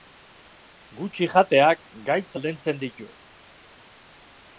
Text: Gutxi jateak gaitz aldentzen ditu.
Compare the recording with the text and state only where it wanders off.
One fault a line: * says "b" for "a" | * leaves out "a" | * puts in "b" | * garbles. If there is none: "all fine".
all fine